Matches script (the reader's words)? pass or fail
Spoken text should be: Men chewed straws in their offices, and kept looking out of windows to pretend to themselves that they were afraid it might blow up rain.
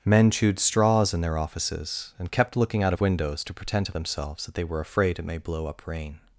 fail